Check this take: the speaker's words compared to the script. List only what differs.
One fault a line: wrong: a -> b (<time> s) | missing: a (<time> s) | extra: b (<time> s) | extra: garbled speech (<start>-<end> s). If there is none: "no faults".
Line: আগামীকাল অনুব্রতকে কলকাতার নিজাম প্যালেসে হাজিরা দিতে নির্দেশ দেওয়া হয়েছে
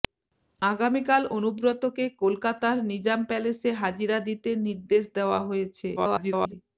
extra: garbled speech (6.0-6.5 s)